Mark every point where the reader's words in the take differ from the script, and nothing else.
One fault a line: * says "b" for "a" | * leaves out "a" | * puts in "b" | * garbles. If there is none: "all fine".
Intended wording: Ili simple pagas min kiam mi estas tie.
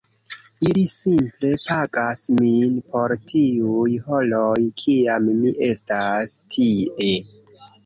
* puts in "por tiuj horoj"